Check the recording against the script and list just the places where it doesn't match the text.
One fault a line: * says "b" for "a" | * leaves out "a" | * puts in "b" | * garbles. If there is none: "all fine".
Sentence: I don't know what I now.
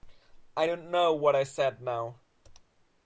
* puts in "said"